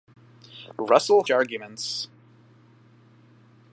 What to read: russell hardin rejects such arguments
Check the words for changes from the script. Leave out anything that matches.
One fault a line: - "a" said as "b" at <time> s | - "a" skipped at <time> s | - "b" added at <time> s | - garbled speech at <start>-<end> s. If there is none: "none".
- "hardin rejects such" skipped at 1.2 s